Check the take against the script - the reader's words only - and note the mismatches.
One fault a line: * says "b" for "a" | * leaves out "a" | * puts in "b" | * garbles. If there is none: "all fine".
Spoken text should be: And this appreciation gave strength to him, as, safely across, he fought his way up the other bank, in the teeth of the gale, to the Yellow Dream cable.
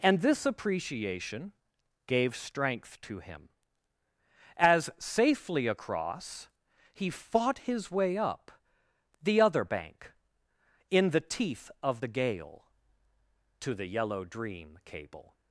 all fine